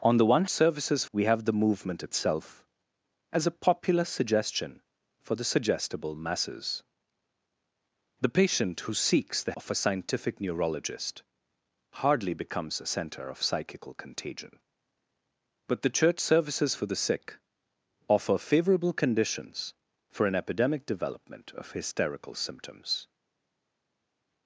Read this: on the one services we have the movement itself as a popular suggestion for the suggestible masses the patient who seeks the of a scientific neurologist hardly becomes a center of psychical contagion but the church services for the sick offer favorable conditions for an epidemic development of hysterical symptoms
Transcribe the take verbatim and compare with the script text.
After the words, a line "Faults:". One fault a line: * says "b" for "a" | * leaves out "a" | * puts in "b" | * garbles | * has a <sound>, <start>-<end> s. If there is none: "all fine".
on the one services we have the movement itself as a popular suggestion for the suggestible masses the patient who seeks the of a scientific neurologist hardly becomes a center of psychical contagion but the church services for the sick offer favorable conditions for an epidemic development of hysterical symptoms
Faults:
all fine